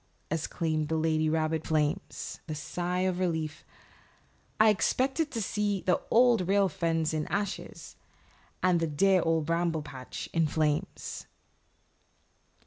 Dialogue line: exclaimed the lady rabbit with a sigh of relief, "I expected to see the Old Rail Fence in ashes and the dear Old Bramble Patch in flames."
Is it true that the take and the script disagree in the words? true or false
true